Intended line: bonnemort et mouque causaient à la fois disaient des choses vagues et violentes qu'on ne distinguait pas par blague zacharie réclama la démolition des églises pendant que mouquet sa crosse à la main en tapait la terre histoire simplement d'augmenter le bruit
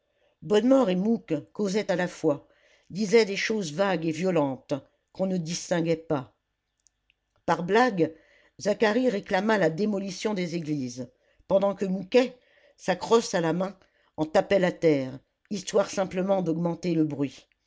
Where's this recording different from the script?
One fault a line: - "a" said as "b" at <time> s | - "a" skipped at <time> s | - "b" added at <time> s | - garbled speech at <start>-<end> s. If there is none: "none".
none